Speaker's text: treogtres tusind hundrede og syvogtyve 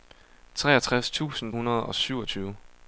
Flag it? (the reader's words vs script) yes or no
no